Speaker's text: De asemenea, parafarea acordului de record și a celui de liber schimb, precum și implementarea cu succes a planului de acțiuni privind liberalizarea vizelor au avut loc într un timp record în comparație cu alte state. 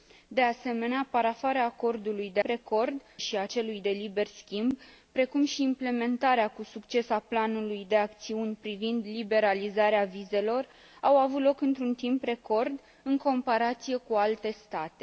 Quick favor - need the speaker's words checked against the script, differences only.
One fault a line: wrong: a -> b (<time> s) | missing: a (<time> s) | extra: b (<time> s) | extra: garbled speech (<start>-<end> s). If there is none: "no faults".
no faults